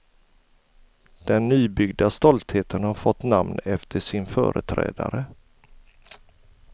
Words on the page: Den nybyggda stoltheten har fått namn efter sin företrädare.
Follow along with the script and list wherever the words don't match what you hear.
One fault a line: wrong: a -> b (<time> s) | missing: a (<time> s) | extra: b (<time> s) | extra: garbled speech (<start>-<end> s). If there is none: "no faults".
no faults